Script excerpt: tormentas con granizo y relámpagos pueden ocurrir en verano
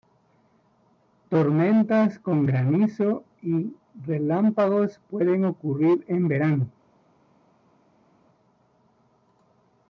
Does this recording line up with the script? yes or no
yes